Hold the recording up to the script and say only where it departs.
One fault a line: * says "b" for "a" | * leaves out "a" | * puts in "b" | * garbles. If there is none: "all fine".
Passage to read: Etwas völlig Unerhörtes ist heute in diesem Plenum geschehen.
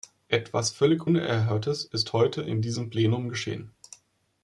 all fine